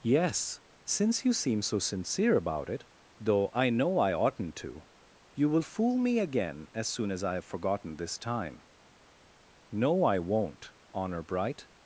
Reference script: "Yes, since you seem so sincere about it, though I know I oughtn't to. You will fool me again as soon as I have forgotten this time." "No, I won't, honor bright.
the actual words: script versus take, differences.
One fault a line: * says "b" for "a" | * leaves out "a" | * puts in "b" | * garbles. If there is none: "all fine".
all fine